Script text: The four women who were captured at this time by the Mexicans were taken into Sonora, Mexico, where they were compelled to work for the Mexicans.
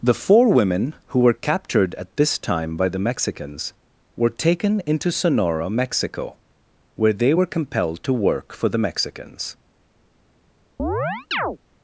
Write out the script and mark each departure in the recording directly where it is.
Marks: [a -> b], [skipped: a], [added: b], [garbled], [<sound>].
The four women who were captured at this time by the Mexicans were taken into Sonora, Mexico, where they were compelled to work for the Mexicans. [chirp]